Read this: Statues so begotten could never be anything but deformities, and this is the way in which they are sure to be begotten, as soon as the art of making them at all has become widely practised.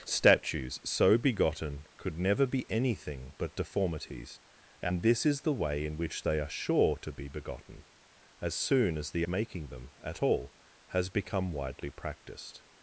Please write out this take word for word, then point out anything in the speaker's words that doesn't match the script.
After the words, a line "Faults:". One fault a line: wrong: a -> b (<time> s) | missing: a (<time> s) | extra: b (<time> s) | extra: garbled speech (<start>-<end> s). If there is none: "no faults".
Statues so begotten could never be anything but deformities, and this is the way in which they are sure to be begotten, as soon as the making them at all has become widely practised.
Faults:
missing: art of (9.3 s)